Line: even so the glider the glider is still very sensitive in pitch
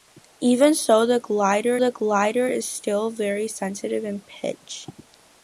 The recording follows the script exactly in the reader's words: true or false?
true